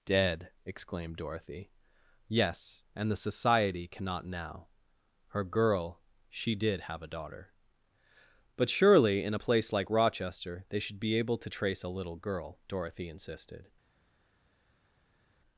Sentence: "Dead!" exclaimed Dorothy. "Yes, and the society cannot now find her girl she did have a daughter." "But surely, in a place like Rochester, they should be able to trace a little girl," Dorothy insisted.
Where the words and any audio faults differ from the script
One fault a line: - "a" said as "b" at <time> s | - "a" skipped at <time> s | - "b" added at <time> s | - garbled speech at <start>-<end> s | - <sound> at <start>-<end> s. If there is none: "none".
- "find" skipped at 4.7 s